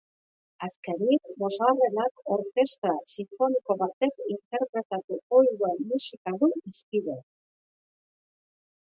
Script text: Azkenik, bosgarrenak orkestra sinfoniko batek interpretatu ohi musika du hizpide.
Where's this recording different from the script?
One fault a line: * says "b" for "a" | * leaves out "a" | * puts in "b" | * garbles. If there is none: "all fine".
* puts in "duen"